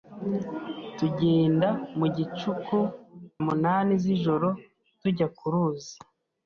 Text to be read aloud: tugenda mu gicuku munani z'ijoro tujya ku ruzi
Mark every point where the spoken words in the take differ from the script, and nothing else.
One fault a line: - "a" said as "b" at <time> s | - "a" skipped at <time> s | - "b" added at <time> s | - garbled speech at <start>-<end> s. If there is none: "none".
none